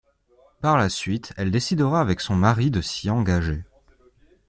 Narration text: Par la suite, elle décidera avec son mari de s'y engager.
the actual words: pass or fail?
pass